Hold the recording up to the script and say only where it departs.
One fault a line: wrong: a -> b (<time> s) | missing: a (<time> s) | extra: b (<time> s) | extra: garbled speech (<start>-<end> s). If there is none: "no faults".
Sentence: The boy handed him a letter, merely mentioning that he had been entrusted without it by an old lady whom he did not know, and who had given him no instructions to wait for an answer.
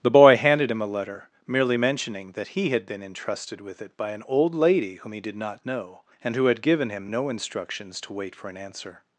wrong: without -> with (3.6 s)